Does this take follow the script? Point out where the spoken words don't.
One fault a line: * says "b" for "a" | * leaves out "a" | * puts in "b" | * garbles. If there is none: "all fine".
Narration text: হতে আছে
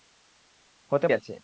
all fine